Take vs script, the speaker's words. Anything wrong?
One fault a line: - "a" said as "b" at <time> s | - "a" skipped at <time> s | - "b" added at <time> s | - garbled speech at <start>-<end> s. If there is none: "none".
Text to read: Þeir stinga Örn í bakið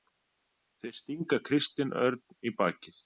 - "Kristinn" added at 1.5 s